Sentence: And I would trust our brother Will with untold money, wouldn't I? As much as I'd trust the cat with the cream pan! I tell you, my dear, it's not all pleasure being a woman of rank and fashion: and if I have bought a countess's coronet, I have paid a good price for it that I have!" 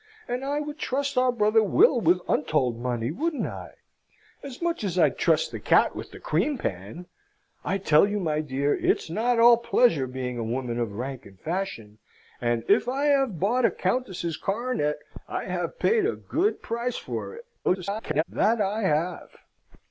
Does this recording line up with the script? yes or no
no